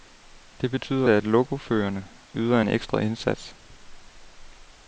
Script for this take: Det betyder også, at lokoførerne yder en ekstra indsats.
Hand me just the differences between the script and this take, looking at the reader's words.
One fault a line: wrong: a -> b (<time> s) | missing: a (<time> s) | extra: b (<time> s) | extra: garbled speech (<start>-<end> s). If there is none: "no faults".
missing: også (1.1 s)